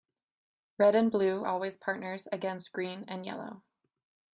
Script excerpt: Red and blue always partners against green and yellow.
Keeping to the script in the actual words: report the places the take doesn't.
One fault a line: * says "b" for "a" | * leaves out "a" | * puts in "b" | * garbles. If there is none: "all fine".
all fine